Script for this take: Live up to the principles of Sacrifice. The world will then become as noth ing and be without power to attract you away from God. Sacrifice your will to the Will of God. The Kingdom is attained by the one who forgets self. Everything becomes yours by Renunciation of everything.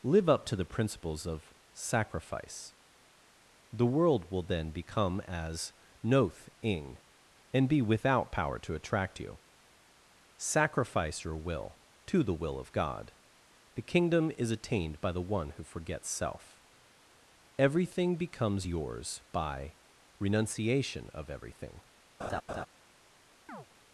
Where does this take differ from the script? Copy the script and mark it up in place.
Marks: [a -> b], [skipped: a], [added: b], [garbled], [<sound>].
Live up to the principles of Sacrifice. The world will then become as noth ing and be without power to attract you [skipped: away from God.] Sacrifice your will to the Will of God. The Kingdom is attained by the one who forgets self. Everything becomes yours by Renunciation of everything. [laugh] [chirp]